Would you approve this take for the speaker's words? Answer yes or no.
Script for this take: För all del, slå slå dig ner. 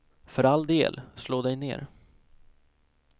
no